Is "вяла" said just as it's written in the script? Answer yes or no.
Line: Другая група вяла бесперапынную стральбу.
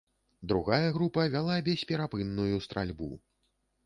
yes